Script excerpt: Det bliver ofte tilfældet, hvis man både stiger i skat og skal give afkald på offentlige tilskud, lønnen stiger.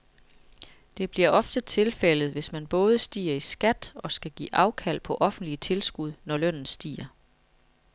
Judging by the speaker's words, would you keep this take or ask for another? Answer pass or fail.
fail